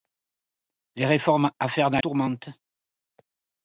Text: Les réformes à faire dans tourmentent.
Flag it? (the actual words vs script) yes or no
no